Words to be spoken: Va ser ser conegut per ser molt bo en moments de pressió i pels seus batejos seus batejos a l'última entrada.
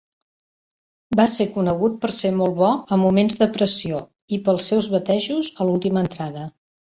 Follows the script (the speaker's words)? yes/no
no